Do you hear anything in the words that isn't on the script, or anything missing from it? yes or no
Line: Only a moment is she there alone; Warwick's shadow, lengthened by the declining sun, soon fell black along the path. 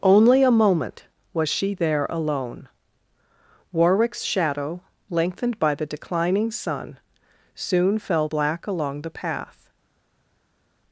yes